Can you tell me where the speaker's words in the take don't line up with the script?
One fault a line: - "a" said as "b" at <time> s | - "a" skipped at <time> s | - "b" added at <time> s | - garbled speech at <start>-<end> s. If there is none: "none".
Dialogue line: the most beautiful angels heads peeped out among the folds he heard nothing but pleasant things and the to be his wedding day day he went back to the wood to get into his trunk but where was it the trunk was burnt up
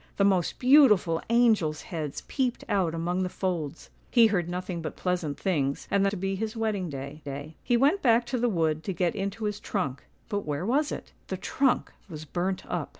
none